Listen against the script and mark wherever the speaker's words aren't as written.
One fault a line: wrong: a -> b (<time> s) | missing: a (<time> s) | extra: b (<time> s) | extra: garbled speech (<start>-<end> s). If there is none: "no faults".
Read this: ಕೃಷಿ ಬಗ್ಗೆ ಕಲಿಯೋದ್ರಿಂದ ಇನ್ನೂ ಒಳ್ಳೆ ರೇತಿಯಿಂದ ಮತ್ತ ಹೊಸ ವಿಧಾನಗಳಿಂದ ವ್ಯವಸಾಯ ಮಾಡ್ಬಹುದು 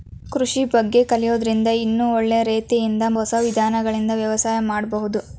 missing: ಮತ್ತ (3.0 s)